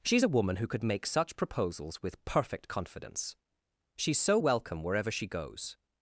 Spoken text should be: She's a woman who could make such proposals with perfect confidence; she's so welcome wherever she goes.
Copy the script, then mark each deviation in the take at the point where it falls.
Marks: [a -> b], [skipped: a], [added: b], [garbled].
She's a woman who could make such proposals with perfect confidence; she's so welcome wherever she goes.